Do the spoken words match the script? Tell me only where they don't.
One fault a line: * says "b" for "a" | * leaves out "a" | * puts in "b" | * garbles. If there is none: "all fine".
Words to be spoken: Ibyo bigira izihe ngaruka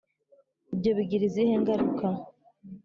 all fine